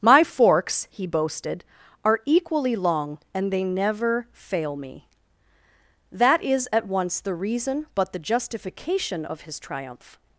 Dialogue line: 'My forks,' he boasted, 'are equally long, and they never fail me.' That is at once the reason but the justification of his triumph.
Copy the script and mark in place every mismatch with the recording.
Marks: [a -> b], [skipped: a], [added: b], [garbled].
'My forks,' he boasted, 'are equally long, and they never fail me.' That is at once the reason but the justification of his triumph.